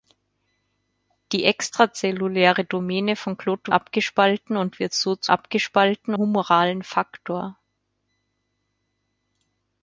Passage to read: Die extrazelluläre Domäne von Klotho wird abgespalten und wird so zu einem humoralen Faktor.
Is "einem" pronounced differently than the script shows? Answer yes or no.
yes